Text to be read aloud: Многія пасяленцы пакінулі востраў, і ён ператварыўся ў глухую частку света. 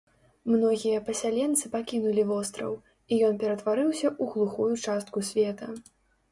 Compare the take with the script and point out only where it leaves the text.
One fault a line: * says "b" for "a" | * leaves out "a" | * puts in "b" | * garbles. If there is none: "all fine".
all fine